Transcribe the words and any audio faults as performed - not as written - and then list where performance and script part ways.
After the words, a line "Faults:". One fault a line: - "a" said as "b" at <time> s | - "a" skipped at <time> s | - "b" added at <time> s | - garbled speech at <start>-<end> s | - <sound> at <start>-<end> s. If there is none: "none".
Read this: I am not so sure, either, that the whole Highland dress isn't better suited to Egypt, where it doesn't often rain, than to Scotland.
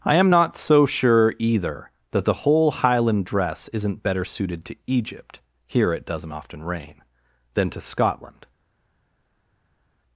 I am not so sure, either, that the whole Highland dress isn't better suited to Egypt, here it doesn't often rain, than to Scotland.
Faults:
- "where" said as "here" at 5.7 s